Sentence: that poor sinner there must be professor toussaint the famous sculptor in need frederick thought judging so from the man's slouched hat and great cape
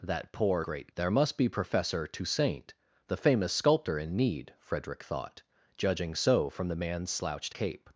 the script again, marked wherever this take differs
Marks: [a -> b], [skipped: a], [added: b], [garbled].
that poor [sinner -> great] there must be professor toussaint the famous sculptor in need frederick thought judging so from the man's slouched [skipped: hat and great] cape